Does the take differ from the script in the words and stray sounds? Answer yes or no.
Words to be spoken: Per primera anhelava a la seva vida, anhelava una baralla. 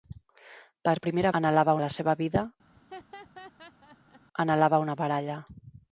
yes